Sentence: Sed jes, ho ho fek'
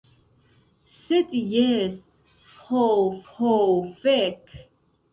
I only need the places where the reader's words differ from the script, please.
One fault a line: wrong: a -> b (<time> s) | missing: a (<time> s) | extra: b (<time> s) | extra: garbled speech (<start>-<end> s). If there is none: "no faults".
no faults